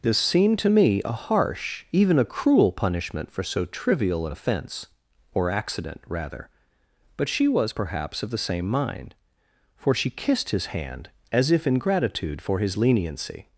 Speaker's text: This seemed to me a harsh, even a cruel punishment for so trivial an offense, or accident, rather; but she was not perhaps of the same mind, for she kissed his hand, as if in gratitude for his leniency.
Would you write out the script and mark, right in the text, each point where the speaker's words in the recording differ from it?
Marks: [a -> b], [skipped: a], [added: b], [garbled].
This seemed to me a harsh, even a cruel punishment for so trivial an offense, or accident, rather; but she was [skipped: not] perhaps of the same mind, for she kissed his hand, as if in gratitude for his leniency.